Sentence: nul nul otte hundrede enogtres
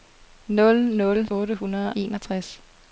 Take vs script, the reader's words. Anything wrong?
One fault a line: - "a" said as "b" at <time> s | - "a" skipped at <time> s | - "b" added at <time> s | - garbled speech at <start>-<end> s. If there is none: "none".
none